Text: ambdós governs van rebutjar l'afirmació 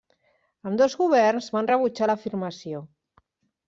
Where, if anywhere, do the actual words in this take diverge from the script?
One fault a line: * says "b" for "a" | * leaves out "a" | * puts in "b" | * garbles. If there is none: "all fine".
all fine